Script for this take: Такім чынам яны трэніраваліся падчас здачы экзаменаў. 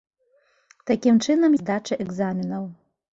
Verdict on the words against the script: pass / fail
fail